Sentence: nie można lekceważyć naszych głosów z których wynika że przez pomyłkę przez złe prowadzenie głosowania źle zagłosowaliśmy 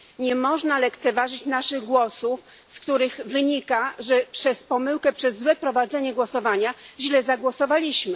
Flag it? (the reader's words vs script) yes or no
no